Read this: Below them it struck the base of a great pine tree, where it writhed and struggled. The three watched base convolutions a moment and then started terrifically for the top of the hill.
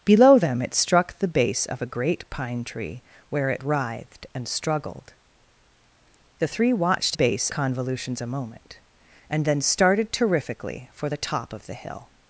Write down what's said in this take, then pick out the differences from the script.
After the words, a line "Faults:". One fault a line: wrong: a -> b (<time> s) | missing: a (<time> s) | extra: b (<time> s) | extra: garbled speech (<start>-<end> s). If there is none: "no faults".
Below them it struck the base of a great pine tree, where it writhed and struggled. The three watched base convolutions a moment and then started terrifically for the top of the hill.
Faults:
no faults